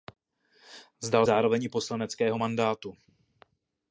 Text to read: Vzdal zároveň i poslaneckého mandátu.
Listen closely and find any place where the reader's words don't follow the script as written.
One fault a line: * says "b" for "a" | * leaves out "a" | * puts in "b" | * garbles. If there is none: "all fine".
all fine